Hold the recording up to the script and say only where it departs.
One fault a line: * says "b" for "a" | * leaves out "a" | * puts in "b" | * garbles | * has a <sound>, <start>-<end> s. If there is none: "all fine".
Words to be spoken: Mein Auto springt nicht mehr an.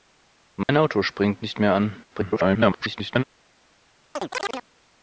* has a dropout, 0.6-0.7 s
* garbles
* has a chirp, 4.2-4.7 s